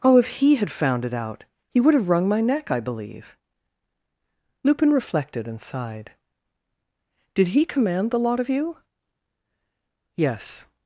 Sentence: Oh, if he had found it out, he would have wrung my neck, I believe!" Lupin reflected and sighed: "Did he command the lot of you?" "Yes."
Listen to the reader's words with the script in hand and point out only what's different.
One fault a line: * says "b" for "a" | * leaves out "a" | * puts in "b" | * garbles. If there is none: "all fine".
all fine